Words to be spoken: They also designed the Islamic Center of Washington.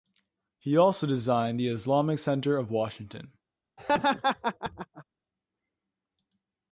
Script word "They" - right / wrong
wrong